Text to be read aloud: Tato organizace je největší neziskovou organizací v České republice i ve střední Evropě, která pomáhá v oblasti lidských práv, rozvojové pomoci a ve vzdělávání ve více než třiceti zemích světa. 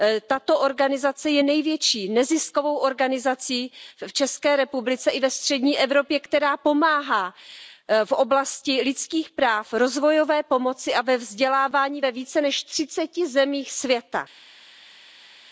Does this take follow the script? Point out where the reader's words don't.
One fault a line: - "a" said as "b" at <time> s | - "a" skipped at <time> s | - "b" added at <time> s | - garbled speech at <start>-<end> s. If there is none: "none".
none